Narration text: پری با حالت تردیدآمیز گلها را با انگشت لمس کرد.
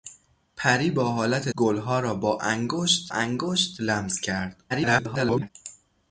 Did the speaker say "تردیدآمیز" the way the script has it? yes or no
no